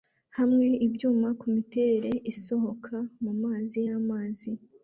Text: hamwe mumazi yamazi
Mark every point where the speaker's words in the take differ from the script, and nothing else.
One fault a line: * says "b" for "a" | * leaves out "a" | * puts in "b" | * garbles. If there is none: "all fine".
* puts in "ibyuma kumiterere isohoka"